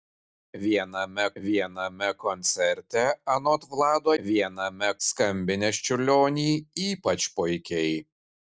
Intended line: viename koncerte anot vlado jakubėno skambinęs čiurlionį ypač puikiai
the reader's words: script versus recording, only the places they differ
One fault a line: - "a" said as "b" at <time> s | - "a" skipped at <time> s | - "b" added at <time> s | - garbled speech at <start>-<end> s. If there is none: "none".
- "viename" added at 1.4 s
- "jakubėno" said as "viename" at 4.2 s